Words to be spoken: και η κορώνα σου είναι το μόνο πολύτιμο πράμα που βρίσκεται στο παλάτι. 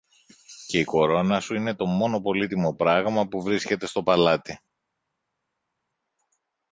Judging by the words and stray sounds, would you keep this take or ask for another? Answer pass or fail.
pass